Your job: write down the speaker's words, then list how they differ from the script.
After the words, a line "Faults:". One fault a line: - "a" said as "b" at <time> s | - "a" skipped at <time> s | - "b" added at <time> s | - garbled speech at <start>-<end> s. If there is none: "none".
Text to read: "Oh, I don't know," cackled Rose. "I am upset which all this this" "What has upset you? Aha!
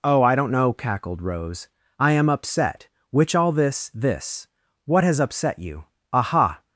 "Oh, I don't know," cackled Rose. "I am upset which all this this" "What has upset you? Aha!
Faults:
none